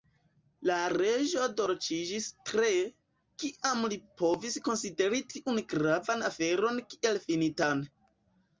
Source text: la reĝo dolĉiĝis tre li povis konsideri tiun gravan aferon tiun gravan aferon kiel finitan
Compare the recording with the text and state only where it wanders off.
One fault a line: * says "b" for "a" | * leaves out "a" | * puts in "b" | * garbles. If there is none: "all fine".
* puts in "kiam"
* leaves out "tiun gravan aferon"